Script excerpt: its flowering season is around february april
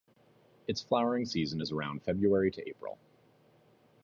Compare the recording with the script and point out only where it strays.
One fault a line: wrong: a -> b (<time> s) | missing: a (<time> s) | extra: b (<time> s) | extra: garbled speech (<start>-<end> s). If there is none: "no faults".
extra: to (2.5 s)